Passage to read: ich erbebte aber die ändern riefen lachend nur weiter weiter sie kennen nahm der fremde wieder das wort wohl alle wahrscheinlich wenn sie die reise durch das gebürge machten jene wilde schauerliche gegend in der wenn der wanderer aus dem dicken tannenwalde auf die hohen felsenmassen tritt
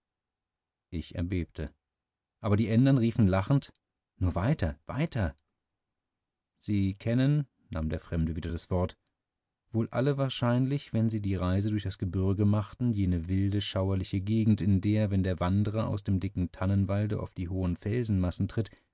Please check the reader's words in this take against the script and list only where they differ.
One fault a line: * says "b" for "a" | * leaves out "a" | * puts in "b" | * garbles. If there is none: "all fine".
all fine